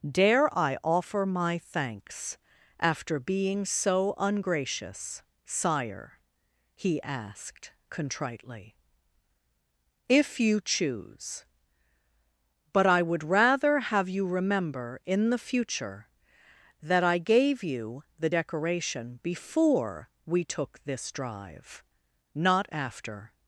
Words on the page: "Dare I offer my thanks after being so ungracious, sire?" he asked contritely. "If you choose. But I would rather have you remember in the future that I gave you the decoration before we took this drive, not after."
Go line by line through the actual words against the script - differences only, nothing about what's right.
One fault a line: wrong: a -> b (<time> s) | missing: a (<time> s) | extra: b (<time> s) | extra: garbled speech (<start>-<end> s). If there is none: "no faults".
no faults